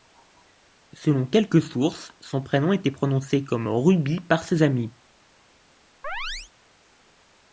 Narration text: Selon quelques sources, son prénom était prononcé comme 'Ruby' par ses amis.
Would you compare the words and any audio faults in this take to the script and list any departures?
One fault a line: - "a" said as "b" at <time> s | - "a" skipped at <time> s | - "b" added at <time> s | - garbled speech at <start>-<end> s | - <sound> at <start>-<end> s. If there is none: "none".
- chirp at 6.0-6.5 s